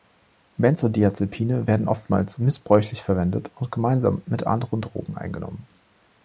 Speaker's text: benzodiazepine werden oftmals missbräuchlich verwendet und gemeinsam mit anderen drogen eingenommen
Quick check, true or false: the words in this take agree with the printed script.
true